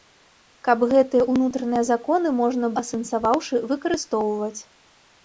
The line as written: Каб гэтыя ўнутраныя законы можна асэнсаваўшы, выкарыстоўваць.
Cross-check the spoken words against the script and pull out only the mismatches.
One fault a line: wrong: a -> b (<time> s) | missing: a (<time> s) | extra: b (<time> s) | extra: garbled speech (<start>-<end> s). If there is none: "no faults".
no faults